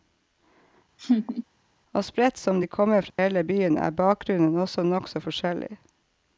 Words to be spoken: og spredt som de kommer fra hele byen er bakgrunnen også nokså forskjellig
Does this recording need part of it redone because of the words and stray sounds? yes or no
yes